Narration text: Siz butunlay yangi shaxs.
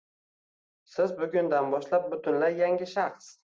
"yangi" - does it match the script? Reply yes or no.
yes